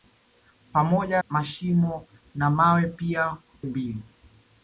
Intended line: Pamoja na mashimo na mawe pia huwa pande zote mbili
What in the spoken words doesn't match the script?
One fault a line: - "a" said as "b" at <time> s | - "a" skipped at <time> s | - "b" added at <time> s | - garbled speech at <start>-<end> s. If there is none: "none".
- "na" skipped at 1.2 s
- "huwa pande zote" skipped at 3.4 s